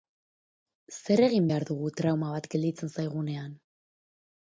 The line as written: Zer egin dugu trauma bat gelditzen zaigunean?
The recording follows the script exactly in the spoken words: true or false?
false